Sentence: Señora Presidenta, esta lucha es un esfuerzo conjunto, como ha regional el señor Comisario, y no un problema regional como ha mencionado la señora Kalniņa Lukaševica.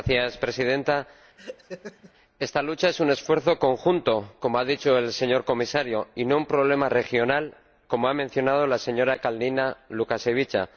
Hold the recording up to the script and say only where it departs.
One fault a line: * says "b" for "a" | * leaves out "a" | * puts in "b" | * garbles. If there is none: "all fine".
* says "dicho" for "regional"